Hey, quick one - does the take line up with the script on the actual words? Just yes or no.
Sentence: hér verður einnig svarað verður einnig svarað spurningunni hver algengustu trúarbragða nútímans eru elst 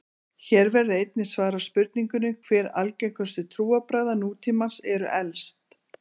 no